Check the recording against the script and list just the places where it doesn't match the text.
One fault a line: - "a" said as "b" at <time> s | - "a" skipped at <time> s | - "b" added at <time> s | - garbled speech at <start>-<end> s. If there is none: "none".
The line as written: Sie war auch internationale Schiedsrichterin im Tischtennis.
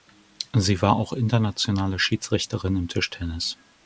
none